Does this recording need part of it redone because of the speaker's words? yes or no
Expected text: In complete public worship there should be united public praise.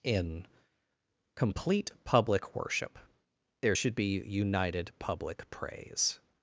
no